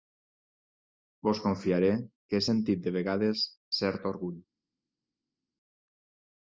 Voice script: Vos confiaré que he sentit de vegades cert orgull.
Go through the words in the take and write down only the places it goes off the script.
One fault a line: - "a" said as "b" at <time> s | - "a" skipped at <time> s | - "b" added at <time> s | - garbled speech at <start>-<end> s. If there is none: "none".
none